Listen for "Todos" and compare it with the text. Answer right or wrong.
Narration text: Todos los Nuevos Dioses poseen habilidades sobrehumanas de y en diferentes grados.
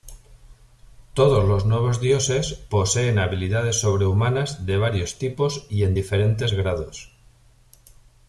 right